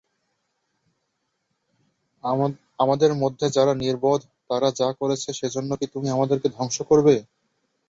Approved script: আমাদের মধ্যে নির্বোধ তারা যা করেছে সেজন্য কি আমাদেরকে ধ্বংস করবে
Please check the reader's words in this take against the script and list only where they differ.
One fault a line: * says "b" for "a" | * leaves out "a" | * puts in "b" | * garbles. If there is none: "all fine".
* puts in "যারা"
* puts in "তুমি"